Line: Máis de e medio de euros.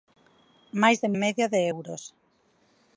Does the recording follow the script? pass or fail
pass